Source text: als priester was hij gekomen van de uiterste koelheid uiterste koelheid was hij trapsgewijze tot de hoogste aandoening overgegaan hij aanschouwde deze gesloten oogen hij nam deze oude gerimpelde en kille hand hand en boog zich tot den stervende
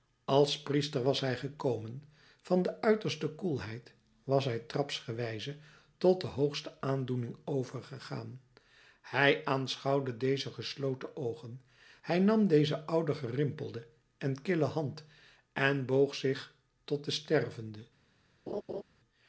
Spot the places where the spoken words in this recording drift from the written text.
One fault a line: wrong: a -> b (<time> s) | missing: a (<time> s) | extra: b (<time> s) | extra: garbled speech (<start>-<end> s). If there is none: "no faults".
missing: uiterste koelheid (3.9 s)
missing: hand (15.0 s)